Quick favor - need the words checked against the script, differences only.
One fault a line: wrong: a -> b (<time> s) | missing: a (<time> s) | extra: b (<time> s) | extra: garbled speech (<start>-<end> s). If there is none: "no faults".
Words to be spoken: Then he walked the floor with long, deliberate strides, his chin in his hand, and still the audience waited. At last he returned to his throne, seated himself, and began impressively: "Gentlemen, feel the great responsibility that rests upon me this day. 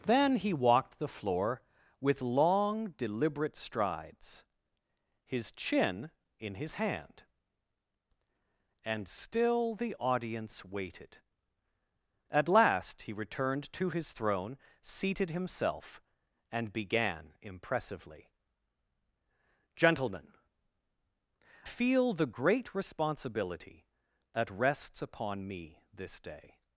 no faults